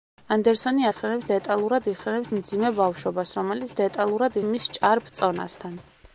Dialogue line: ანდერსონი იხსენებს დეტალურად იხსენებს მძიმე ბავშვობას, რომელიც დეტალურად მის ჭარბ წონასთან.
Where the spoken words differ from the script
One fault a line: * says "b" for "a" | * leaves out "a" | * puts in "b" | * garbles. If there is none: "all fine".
all fine